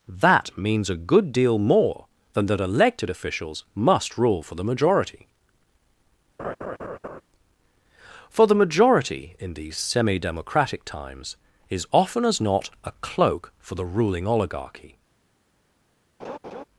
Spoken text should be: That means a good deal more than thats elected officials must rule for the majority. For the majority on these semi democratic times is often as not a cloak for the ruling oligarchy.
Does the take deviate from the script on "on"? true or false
true